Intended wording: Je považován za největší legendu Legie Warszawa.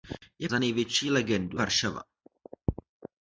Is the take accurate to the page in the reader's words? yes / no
no